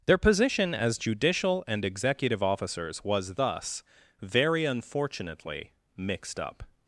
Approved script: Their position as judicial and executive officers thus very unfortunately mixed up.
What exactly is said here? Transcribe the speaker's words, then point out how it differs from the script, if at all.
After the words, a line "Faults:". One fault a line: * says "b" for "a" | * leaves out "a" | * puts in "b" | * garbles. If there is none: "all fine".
Their position as judicial and executive officers was thus very unfortunately mixed up.
Faults:
* puts in "was"